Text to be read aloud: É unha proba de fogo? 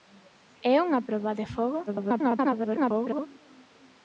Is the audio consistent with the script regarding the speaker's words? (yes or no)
no